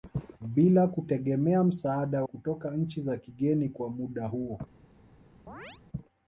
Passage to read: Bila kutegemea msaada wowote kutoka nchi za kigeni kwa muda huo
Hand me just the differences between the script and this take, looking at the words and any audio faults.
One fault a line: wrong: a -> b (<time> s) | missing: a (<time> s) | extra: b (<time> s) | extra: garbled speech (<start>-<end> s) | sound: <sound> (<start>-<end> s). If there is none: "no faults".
missing: wowote (2.2 s)
sound: chirp (5.5-5.8 s)